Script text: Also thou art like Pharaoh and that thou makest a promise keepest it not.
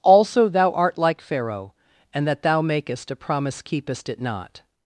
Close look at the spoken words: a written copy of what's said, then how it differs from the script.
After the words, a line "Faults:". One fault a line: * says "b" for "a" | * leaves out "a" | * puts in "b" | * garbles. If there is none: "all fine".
Also thou art like Pharaoh and that thou makest a promise keepest it not.
Faults:
all fine